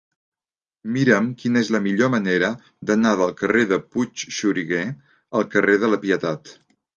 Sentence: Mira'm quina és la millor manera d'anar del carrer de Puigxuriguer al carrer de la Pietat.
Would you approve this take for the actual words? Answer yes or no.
yes